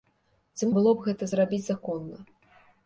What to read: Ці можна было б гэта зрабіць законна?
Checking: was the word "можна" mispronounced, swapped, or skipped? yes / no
yes